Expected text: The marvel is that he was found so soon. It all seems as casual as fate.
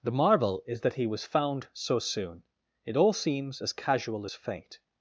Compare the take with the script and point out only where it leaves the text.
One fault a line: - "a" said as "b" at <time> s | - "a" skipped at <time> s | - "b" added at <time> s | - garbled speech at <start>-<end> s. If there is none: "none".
none